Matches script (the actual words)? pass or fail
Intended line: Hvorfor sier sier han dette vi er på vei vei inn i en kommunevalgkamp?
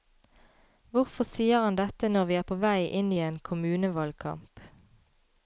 fail